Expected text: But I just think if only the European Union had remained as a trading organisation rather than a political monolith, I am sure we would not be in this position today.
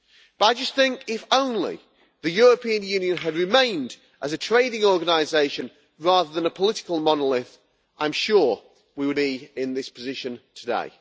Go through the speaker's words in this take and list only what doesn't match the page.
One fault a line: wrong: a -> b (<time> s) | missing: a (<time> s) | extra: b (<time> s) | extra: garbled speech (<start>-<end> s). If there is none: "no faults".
missing: not (9.2 s)